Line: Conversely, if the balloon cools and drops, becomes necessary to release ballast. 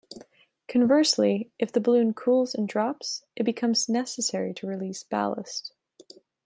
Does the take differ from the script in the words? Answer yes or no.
yes